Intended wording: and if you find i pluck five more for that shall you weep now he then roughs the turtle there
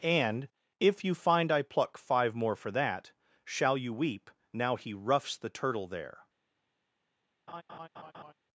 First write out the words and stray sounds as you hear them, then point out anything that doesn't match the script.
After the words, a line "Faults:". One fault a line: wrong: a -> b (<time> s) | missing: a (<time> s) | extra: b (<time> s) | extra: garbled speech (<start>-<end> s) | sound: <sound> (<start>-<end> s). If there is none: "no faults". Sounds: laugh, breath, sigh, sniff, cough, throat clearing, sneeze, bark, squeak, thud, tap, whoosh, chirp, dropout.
and if you find i pluck five more for that shall you weep now he roughs the turtle there
Faults:
missing: then (4.9 s)
sound: laugh (7.5-8.3 s)